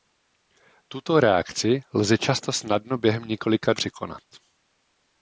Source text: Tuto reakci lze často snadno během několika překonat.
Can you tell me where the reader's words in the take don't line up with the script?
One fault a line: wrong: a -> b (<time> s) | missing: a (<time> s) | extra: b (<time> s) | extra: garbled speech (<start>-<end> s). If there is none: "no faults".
no faults